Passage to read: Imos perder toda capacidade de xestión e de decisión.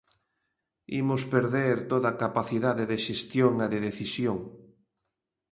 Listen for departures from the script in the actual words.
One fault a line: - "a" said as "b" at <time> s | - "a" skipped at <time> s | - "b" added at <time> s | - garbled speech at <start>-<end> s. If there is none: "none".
none